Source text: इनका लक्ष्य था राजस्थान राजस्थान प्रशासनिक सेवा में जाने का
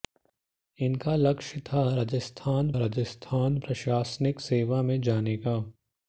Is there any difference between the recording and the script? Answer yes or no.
no